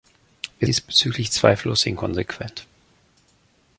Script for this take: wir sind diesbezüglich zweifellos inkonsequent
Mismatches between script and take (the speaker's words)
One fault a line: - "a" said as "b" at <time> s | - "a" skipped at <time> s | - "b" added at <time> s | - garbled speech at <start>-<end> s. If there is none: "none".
- "sind" skipped at 0.7 s